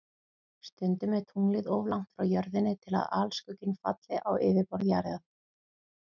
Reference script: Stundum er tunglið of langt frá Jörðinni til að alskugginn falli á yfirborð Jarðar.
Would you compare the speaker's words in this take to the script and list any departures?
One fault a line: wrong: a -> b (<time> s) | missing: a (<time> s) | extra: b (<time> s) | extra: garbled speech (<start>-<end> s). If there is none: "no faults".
no faults